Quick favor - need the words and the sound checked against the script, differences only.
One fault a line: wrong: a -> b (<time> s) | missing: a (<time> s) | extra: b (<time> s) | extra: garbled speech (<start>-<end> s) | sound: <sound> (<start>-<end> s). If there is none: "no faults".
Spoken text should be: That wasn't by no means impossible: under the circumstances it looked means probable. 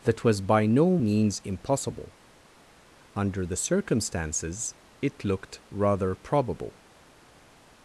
wrong: wasn't -> was (0.2 s)
wrong: means -> rather (5.7 s)